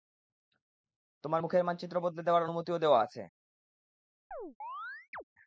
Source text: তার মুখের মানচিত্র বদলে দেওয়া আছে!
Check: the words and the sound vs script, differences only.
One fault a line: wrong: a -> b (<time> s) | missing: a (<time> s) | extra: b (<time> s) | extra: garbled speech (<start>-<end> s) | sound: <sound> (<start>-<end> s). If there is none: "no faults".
wrong: তার -> তোমার (1.2 s)
extra: দেওয়ার অনুমতিও (2.2 s)
sound: chirp (4.3-5.2 s)